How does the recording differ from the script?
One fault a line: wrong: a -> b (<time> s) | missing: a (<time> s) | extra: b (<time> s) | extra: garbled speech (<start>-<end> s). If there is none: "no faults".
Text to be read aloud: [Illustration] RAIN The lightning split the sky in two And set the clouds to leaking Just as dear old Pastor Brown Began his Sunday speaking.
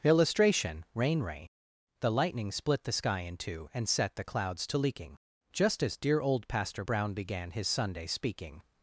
extra: ray (1.2 s)